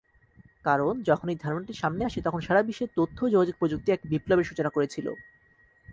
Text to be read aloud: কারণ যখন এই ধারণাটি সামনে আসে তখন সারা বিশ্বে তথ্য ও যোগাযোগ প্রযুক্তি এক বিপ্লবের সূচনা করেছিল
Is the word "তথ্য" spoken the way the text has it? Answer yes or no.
yes